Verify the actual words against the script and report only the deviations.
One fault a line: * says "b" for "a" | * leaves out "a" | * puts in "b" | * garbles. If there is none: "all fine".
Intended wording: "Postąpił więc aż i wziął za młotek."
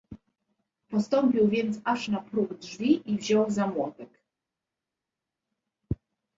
* puts in "na próg drzwi"